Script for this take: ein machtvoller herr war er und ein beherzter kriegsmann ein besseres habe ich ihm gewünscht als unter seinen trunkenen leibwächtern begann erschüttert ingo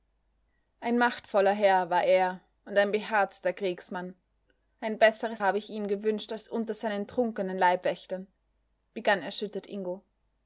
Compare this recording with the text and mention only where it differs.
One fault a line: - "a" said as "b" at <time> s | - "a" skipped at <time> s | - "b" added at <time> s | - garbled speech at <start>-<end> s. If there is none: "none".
none